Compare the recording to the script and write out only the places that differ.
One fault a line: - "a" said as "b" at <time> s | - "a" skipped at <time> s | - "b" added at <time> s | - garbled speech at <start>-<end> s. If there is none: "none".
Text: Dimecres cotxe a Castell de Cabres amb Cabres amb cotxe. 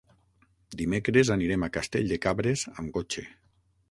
- "cotxe" said as "anirem" at 1.4 s
- "Cabres amb" skipped at 3.0 s